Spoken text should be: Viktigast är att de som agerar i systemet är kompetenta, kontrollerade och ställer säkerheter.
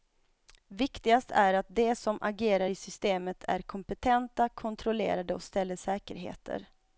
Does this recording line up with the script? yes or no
yes